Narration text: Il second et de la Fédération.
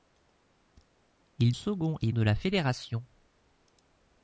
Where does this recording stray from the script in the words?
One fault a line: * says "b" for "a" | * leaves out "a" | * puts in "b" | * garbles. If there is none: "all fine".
all fine